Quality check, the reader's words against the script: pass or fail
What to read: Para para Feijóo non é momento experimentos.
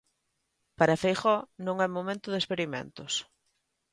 fail